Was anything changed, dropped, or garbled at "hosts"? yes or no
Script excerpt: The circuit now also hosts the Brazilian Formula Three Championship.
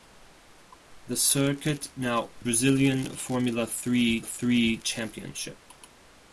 yes